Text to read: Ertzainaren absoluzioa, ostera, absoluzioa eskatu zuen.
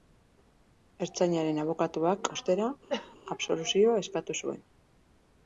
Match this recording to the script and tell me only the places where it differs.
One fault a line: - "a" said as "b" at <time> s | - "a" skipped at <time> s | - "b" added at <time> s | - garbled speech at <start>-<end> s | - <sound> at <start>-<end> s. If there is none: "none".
- "absoluzioa" said as "abokatuak" at 1.6 s
- cough at 2.9-3.2 s